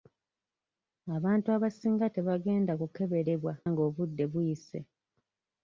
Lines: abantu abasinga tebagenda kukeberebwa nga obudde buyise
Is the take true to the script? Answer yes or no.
yes